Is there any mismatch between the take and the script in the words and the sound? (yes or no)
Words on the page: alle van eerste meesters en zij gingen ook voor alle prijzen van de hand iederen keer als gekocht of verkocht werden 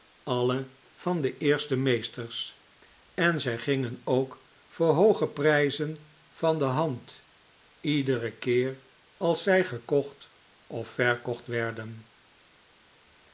yes